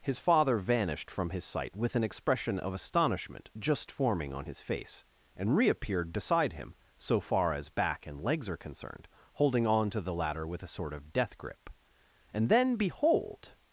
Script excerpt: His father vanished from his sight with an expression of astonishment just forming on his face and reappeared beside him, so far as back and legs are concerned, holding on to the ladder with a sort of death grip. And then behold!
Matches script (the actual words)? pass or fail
pass